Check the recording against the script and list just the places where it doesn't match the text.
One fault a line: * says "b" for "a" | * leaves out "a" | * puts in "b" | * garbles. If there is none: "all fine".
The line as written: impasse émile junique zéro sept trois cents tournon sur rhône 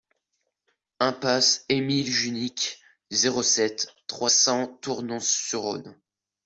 all fine